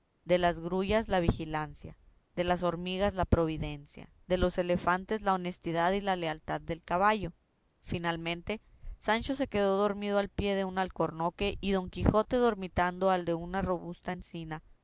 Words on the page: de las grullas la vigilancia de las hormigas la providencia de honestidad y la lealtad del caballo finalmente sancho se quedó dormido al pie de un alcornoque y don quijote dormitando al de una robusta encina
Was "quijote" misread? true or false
false